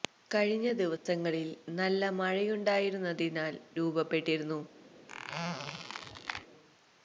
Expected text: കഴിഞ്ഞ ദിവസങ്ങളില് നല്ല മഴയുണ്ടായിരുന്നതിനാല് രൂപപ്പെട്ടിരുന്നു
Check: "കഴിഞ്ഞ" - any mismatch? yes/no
no